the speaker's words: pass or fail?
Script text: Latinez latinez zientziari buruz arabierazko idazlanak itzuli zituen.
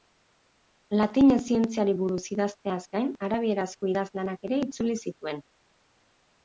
fail